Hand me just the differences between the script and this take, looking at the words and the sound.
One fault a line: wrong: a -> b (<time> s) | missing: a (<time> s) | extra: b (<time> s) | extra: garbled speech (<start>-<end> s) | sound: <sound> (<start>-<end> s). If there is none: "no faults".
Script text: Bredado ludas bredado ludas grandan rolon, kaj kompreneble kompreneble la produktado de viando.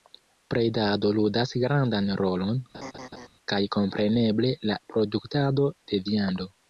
missing: bredado ludas (1.5 s)
sound: laugh (2.7-3.3 s)
missing: kompreneble (4.5 s)